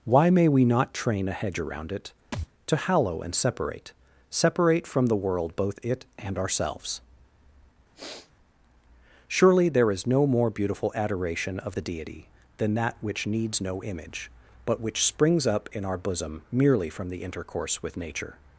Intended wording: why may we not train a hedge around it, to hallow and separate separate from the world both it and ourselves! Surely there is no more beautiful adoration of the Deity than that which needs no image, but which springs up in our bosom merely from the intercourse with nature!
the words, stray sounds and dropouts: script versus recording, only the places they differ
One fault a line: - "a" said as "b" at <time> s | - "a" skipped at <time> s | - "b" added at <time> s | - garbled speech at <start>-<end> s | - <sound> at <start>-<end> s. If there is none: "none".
- thud at 2.3-2.5 s
- sniff at 7.9-8.3 s